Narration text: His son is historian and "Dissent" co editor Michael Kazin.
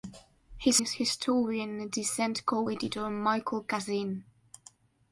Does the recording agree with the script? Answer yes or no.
no